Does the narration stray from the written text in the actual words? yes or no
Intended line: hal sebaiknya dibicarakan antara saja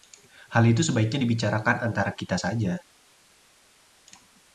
yes